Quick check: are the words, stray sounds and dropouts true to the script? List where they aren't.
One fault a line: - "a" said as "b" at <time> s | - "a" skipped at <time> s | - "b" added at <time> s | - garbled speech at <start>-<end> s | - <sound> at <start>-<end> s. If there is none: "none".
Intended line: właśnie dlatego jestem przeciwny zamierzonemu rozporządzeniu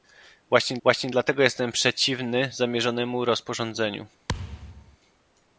- "właśnie" added at 0.8 s
- thud at 4.3-5.0 s